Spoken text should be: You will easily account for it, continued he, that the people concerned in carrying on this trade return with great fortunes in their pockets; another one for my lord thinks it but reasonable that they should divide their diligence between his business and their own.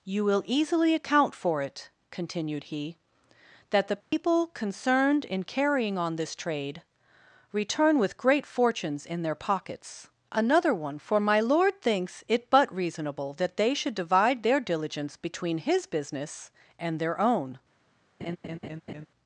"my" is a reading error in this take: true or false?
false